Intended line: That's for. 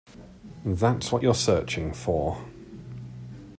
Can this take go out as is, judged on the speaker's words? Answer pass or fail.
fail